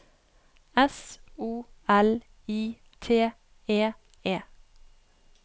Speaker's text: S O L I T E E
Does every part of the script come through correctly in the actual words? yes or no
yes